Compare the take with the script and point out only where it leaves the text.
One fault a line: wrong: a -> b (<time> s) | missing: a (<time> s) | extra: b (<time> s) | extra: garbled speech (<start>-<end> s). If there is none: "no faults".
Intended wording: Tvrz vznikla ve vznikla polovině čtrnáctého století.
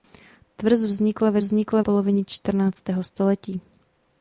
no faults